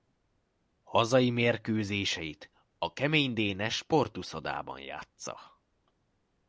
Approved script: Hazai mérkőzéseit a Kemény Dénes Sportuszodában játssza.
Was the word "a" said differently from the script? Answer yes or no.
no